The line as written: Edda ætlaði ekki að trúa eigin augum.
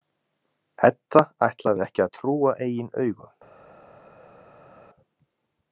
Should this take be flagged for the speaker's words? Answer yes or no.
no